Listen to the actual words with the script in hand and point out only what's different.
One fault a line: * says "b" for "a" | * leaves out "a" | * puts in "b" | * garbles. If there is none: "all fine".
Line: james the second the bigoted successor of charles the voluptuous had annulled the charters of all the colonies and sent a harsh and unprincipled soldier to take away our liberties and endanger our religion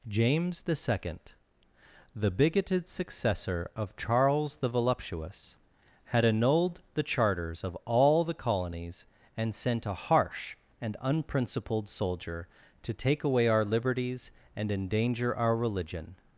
all fine